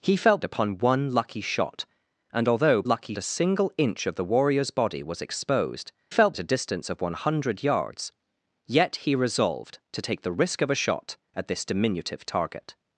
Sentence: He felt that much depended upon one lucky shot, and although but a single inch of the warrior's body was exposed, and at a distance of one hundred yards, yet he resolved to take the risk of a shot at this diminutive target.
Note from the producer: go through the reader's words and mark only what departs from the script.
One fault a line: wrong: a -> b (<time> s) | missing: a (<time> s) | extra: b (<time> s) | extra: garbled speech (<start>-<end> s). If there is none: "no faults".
missing: that much depended (0.4 s)
wrong: but -> lucky (2.8 s)
wrong: and -> felt (6.1 s)